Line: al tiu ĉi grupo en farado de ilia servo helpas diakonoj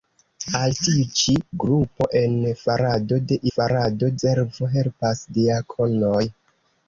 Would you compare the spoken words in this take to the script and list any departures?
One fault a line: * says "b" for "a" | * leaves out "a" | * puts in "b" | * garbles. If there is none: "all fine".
* says "farado" for "ilia"